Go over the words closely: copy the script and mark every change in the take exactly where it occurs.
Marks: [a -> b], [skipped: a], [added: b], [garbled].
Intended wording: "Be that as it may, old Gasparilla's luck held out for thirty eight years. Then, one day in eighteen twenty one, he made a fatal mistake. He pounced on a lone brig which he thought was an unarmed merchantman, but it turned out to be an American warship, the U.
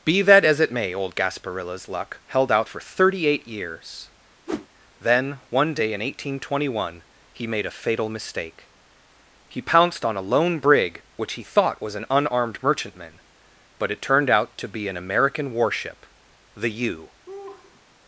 "Be that as it may, old Gasparilla's luck held out for thirty eight years. Then, one day in eighteen twenty one, he made a fatal mistake. He pounced on a lone brig which he thought was an unarmed merchantman, but it turned out to be an American warship, the U.